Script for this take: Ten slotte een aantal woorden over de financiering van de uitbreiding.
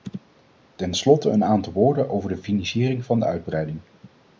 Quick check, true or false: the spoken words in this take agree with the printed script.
true